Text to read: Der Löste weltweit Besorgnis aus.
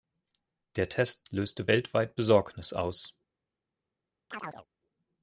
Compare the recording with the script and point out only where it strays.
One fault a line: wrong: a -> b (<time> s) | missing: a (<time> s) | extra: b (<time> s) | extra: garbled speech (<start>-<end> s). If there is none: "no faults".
extra: Test (0.9 s)